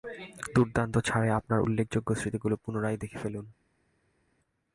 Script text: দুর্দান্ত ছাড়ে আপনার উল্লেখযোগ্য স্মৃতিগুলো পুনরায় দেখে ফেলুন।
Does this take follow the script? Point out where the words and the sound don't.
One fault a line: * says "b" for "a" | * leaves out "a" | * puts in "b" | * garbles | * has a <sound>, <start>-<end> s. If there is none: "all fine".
all fine